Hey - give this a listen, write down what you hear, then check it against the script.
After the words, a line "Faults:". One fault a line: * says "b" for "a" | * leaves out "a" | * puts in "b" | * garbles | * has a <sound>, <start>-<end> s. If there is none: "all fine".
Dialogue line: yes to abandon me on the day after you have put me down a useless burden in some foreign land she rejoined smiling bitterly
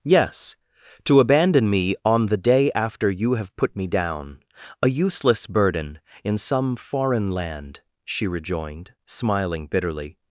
yes to abandon me on the day after you have put me down a useless burden in some foreign land she rejoined smiling bitterly
Faults:
all fine